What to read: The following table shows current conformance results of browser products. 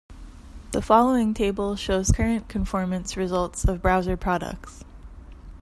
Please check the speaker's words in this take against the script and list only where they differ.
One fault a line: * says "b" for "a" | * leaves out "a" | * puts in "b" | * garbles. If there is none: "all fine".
all fine